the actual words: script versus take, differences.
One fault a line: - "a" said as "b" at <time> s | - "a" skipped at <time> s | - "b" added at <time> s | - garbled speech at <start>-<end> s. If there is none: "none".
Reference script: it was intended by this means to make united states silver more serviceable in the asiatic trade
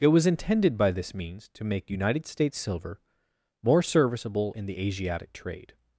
none